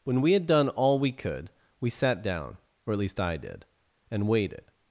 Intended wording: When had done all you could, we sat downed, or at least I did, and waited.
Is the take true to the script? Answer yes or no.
no